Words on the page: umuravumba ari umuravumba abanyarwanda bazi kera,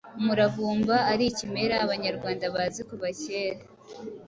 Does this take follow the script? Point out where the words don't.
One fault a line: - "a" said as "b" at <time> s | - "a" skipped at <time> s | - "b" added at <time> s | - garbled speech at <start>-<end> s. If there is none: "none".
- "umuravumba" said as "ikimera" at 1.3 s
- "kuva" added at 2.9 s